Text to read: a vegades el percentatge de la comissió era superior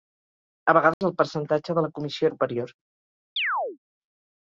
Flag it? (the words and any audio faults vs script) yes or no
yes